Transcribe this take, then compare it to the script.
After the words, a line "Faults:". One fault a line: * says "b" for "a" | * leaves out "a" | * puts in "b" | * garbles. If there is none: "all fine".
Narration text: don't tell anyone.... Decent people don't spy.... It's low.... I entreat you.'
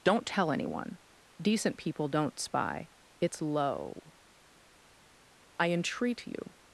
don't tell anyone.... Decent people don't spy.... It's low.... I entreat you.'
Faults:
all fine